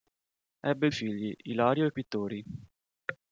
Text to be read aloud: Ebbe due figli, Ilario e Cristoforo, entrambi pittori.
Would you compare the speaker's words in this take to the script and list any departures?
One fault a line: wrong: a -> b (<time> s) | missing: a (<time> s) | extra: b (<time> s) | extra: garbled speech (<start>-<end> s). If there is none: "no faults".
missing: due (0.9 s)
missing: Cristoforo entrambi (1.9 s)